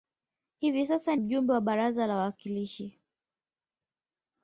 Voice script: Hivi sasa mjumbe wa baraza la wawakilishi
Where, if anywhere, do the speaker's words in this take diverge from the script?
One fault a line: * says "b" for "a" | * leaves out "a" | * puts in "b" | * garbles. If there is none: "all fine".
all fine